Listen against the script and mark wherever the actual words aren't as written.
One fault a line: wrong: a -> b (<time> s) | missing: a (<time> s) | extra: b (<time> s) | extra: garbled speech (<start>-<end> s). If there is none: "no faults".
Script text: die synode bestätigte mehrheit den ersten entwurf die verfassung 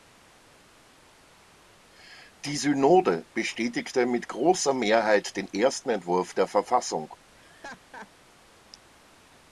extra: mit großer (4.1 s)
wrong: die -> der (6.3 s)